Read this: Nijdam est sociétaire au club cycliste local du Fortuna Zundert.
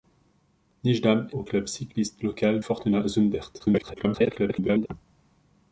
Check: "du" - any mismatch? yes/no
yes